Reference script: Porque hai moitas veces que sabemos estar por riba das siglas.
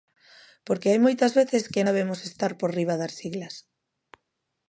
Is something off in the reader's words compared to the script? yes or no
no